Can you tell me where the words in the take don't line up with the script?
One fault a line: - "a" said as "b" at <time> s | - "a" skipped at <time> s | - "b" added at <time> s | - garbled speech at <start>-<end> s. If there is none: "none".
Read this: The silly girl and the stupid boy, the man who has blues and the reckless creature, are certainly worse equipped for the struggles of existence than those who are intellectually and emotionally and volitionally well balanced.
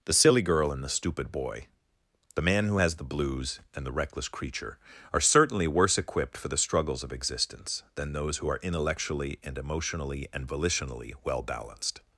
- "the" added at 2.9 s